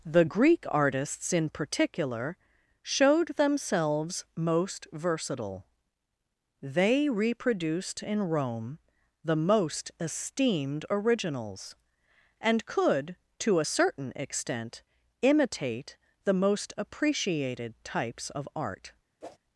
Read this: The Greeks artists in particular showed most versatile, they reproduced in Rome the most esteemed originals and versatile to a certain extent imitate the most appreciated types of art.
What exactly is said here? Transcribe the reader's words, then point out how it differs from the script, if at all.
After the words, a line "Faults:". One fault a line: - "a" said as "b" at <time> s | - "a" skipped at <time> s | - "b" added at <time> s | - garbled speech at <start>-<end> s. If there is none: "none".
The Greek artists in particular showed themselves most versatile, they reproduced in Rome the most esteemed originals and could to a certain extent imitate the most appreciated types of art.
Faults:
- "Greeks" said as "Greek" at 0.2 s
- "themselves" added at 3.4 s
- "versatile" said as "could" at 12.7 s